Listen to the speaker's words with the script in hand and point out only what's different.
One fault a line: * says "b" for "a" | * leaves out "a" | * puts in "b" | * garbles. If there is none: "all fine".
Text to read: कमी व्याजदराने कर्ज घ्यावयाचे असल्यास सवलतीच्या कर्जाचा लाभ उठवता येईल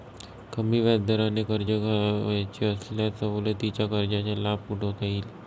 all fine